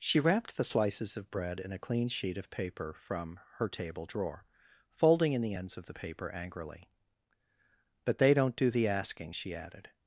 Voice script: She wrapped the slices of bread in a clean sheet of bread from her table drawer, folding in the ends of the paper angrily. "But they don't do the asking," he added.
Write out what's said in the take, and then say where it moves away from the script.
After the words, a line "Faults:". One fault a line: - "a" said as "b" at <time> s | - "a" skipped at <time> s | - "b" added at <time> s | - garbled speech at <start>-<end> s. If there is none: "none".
She wrapped the slices of bread in a clean sheet of paper from her table drawer, folding in the ends of the paper angrily. "But they don't do the asking," she added.
Faults:
- "bread" said as "paper" at 2.5 s
- "he" said as "she" at 9.3 s